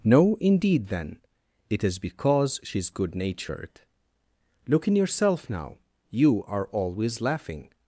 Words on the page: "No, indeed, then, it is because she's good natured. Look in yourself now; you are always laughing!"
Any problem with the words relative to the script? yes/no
no